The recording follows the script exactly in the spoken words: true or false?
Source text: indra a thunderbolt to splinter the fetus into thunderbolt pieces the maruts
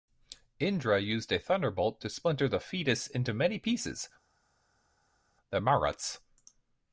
false